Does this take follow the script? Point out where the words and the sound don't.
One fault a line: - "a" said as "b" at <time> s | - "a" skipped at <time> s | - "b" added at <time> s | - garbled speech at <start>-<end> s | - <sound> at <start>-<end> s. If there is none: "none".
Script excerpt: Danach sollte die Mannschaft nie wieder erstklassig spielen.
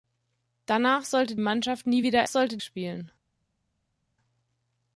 - "die" skipped at 1.4 s
- "erstklassig" said as "sollte" at 2.2 s